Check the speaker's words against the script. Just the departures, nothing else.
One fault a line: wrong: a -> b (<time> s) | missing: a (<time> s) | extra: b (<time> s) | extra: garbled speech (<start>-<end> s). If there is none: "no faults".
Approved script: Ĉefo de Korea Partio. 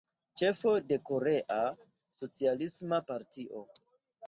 extra: Socialisma (2.2 s)